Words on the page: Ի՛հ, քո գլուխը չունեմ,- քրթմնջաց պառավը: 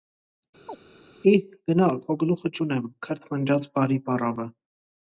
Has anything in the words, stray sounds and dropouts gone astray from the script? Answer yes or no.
yes